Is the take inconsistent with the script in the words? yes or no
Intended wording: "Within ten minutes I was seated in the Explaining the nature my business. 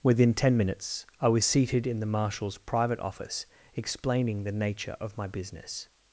yes